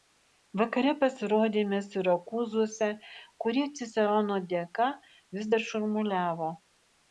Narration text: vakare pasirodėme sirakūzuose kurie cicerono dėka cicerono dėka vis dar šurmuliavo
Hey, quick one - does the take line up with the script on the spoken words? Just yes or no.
no